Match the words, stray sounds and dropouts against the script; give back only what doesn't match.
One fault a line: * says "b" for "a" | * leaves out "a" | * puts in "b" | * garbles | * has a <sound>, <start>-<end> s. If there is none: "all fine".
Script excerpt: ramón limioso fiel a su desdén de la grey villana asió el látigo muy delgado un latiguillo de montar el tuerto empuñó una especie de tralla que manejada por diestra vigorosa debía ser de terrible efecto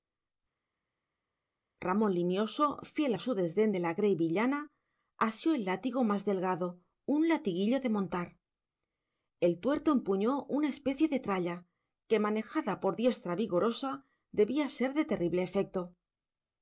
* says "más" for "muy"